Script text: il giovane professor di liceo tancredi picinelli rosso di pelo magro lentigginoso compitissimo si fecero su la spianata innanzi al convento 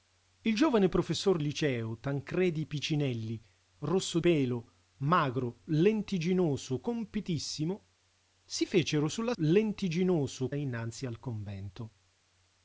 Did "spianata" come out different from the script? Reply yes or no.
yes